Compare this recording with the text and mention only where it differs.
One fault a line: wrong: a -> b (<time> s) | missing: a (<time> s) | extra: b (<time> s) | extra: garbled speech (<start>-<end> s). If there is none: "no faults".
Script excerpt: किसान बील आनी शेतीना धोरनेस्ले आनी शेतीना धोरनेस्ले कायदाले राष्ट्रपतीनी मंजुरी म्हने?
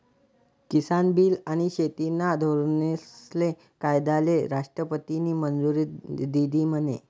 missing: आनी शेतीना धोरनेस्ले (3.5 s)
extra: दिधी (6.3 s)